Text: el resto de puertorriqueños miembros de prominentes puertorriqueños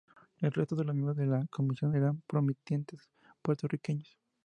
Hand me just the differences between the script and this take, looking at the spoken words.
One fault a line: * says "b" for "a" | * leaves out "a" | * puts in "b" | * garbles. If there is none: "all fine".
* says "los" for "puertorriqueños"
* puts in "la comisión eran"